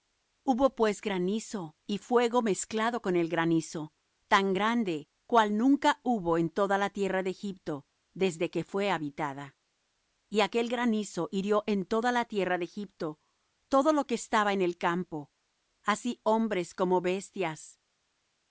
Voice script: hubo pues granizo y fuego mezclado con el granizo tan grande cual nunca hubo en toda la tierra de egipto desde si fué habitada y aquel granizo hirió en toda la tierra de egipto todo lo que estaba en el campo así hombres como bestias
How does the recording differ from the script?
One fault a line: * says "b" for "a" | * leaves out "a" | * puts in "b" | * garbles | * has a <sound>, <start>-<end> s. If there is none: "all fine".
* says "que" for "si"